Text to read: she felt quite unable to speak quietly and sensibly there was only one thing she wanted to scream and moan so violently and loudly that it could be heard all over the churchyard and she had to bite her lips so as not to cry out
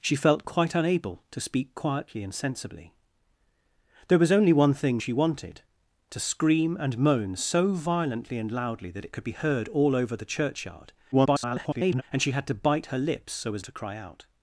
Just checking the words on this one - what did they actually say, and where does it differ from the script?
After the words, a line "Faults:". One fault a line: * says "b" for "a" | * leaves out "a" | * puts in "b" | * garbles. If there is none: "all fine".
she felt quite unable to speak quietly and sensibly there was only one thing she wanted to scream and moan so violently and loudly that it could be heard all over the churchyard [garbled] and she had to bite her lips so as to cry out
Faults:
* garbles
* leaves out "not"